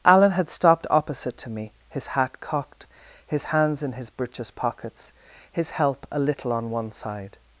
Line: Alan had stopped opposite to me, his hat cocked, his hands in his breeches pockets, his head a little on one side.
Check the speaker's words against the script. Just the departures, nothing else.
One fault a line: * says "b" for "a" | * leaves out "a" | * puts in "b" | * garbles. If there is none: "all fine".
* says "help" for "head"